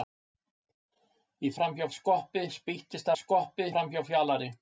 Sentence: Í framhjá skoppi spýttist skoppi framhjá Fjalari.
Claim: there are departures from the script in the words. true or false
false